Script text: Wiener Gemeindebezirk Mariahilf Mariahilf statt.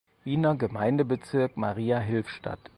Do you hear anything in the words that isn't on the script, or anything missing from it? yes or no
yes